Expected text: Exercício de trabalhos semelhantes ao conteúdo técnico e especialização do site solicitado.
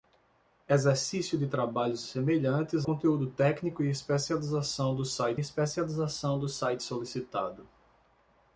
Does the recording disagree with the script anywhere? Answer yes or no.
yes